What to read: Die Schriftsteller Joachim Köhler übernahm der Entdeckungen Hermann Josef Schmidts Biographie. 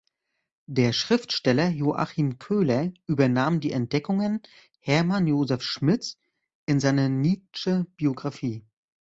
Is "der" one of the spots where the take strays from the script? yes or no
yes